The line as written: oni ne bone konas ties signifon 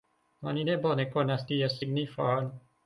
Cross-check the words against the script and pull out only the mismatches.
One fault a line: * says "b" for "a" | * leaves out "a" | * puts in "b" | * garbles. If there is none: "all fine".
all fine